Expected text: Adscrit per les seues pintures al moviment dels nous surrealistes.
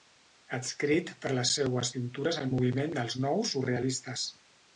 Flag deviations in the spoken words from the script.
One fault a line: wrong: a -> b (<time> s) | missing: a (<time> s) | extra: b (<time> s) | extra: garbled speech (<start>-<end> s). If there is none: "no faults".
no faults